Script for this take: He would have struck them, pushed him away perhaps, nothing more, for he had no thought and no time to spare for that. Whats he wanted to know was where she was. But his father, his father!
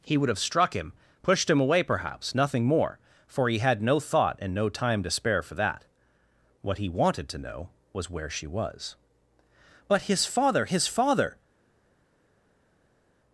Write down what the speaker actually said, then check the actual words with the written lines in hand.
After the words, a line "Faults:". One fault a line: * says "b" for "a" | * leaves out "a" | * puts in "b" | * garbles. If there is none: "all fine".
He would have struck him, pushed him away perhaps, nothing more, for he had no thought and no time to spare for that. What he wanted to know was where she was. But his father, his father!
Faults:
* says "him" for "them"
* says "What" for "Whats"